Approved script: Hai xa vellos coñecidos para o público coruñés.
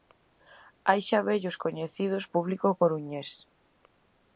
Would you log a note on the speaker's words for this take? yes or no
yes